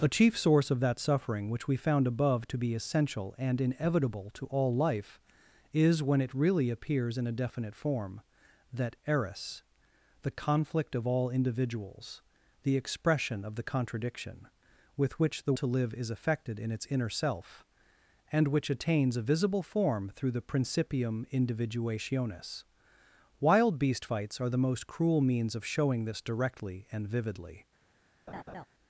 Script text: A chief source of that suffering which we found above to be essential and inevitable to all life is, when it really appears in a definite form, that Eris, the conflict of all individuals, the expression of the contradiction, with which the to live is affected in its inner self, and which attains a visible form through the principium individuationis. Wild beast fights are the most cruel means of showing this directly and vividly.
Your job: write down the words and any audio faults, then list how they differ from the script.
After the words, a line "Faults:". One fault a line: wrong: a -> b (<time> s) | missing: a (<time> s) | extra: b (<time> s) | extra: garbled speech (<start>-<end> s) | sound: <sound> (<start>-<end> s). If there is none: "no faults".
A chief source of that suffering which we found above to be essential and inevitable to all life is, when it really appears in a definite form, that Eris, the conflict of all individuals, the expression of the contradiction, with which the to live is affected in its inner self, and which attains a visible form through the principium individuationis. Wild beast fights are the most cruel means of showing this directly and vividly.
Faults:
sound: laugh (28.3-28.7 s)